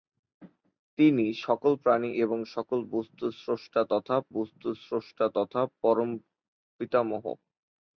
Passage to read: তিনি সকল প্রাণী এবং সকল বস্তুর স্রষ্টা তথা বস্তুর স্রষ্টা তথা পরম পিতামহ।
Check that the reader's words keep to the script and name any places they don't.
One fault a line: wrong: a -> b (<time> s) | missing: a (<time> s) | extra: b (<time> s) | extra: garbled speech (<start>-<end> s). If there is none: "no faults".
no faults